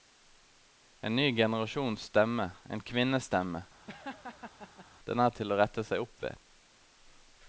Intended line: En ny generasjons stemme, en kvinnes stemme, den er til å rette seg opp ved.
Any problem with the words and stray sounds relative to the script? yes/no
yes